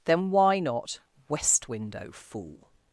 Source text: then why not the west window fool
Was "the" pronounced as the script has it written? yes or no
no